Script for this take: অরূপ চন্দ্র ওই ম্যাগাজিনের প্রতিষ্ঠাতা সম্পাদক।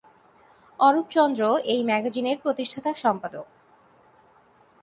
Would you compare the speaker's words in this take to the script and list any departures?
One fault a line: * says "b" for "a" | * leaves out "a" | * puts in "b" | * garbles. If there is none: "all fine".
* says "এই" for "ওই"